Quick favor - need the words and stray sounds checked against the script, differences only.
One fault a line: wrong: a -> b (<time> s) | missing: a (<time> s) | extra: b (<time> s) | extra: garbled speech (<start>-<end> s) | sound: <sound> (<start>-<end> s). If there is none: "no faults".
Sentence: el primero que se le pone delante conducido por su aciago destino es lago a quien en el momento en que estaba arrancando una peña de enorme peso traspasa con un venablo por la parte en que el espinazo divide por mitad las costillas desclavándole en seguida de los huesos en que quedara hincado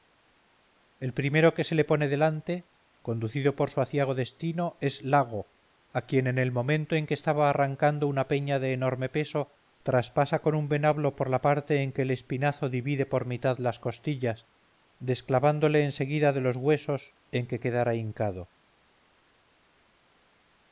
no faults